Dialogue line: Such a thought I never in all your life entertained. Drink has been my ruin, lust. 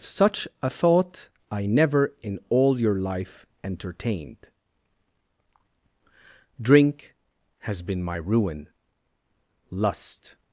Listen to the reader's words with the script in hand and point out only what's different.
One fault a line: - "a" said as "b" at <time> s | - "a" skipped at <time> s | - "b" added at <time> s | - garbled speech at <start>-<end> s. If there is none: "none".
none